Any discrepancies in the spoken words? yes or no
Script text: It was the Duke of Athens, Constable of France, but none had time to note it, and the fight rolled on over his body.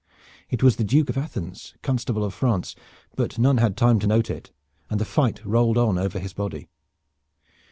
no